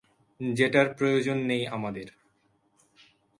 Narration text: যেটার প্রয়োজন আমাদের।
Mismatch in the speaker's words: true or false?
true